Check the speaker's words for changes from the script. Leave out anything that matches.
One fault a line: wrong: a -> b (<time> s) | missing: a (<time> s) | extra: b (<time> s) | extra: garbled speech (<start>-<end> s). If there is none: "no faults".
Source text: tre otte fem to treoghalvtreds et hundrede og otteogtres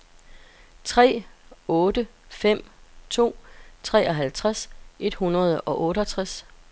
no faults